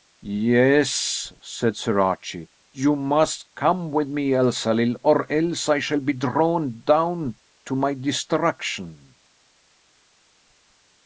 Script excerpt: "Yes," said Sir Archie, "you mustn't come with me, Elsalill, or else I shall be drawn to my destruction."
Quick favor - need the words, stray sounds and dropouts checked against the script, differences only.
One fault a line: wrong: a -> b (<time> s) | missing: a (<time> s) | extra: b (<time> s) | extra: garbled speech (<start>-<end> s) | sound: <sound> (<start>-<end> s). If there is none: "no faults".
wrong: mustn't -> must (3.0 s)
extra: down (6.8 s)